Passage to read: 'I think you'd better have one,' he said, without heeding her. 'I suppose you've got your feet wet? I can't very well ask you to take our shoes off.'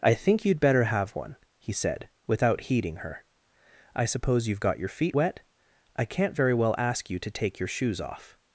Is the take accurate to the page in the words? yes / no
no